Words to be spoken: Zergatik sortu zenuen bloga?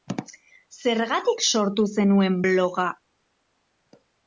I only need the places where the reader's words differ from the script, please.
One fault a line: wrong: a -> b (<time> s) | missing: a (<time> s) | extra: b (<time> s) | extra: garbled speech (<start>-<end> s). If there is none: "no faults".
no faults